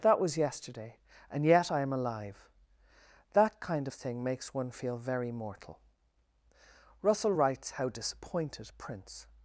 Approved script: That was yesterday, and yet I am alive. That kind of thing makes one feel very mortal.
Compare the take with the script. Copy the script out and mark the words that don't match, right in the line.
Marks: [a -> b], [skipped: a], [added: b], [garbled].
That was yesterday, and yet I am alive. That kind of thing makes one feel very mortal. [added: Russell writes how disappointed Prince]